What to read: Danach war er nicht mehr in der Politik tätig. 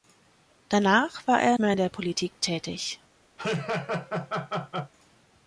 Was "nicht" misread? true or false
true